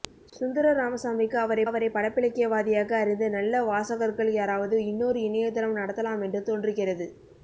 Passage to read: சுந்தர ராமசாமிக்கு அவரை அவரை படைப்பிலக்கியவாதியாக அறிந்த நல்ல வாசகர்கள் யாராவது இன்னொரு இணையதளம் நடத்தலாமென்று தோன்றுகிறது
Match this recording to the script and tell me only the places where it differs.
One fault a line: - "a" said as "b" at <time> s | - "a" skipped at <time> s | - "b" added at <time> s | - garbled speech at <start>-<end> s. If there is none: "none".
none